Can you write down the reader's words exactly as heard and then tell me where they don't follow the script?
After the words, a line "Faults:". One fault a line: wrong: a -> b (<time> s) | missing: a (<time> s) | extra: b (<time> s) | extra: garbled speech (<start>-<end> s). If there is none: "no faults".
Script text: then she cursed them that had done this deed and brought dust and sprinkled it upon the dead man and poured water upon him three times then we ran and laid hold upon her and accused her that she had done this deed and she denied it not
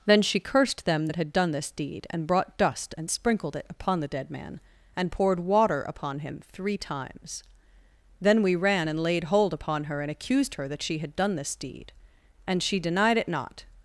then she cursed them that had done this deed and brought dust and sprinkled it upon the dead man and poured water upon him three times then we ran and laid hold upon her and accused her that she had done this deed and she denied it not
Faults:
no faults